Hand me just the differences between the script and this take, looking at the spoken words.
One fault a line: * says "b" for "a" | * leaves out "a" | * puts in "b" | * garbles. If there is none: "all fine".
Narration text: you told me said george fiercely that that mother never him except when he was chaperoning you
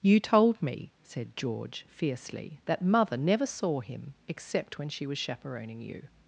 * leaves out "that"
* puts in "saw"
* says "she" for "he"